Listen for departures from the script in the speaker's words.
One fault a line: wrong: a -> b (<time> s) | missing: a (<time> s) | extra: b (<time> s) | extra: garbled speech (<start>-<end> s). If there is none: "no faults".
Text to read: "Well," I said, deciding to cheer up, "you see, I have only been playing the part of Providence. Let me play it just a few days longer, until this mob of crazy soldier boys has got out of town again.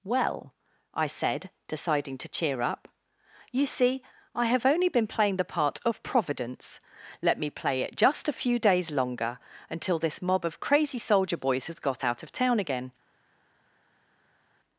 no faults